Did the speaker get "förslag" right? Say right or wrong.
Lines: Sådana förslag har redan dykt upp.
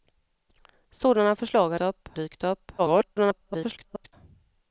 right